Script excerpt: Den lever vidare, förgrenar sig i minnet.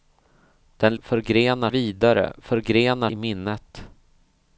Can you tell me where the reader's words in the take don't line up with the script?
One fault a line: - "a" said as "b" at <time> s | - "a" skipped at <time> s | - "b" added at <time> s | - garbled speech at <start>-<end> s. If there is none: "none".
- "lever" said as "förgrenar" at 1.0 s
- "sig" skipped at 3.1 s